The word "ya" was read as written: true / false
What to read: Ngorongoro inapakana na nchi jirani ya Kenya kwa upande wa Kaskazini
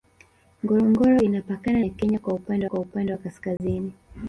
false